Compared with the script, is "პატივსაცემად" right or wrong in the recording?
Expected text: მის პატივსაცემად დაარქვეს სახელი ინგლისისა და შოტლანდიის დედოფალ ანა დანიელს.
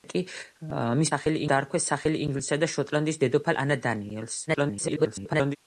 wrong